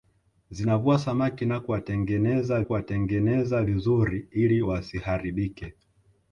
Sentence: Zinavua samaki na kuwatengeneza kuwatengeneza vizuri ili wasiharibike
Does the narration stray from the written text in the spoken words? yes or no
no